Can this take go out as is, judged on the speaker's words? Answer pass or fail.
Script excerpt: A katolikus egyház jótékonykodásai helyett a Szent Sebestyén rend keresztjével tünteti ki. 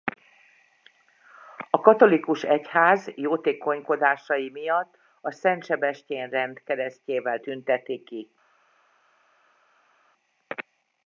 fail